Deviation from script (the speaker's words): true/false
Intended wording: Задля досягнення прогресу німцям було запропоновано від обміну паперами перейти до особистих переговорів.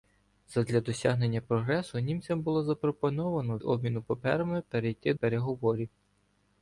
true